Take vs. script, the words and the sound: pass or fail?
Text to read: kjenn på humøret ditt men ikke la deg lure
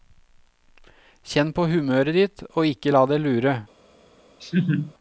fail